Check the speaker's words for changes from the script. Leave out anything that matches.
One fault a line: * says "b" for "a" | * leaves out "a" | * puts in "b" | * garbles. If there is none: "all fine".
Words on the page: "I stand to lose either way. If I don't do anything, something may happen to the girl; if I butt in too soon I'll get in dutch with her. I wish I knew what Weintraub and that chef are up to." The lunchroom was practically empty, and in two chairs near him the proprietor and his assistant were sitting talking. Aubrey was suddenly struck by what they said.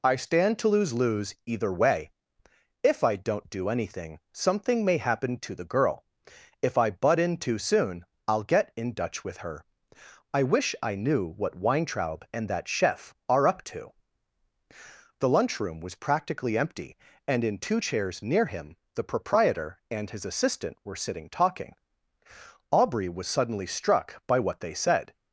* puts in "lose"